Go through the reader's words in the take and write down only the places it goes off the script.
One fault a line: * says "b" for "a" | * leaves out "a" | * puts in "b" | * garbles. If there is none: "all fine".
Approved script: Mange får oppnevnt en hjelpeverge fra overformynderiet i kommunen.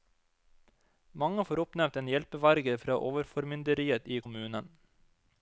all fine